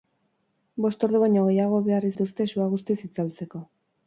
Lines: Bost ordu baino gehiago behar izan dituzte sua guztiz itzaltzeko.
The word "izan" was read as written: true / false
false